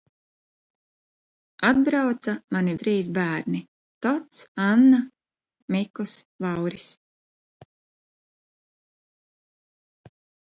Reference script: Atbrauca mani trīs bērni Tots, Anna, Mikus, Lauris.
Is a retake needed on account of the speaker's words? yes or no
no